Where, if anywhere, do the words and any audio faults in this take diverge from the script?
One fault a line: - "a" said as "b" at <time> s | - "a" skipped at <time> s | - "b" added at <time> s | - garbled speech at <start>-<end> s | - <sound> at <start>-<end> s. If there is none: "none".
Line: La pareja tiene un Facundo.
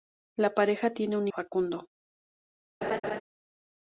- laugh at 2.8-3.2 s